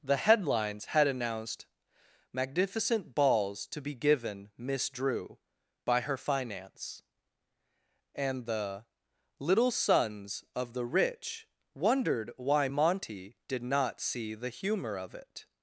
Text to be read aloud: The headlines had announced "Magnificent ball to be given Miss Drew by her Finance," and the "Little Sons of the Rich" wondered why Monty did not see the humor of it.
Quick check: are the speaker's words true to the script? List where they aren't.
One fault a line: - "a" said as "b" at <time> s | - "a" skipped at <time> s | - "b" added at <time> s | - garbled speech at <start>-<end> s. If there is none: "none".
- "ball" said as "balls" at 3.1 s